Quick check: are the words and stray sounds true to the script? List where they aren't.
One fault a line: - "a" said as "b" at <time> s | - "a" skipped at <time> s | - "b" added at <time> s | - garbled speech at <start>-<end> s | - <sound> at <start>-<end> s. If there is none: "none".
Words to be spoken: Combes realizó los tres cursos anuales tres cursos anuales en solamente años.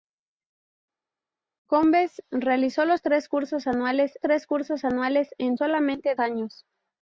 none